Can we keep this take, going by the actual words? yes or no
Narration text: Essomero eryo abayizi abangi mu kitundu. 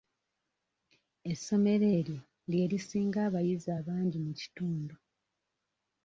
no